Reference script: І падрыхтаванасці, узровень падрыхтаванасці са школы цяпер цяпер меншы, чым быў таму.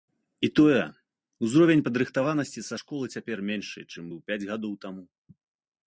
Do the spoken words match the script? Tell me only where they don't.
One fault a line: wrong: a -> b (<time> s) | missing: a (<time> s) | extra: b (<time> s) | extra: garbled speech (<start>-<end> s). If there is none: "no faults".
wrong: падрыхтаванасці -> тое (0.6 s)
missing: цяпер (3.4 s)
extra: пяць гадоў (4.3 s)